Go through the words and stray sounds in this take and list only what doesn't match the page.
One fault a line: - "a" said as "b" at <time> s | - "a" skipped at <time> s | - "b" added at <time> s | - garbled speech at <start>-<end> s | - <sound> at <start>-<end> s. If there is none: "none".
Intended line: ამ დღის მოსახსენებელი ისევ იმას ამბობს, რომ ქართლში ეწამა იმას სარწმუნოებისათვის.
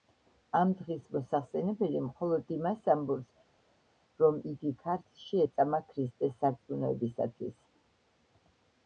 - "ისევ" said as "მხოლოდ" at 2.0 s
- "იგი" added at 4.5 s
- "იმას" said as "ქრისტეს" at 5.9 s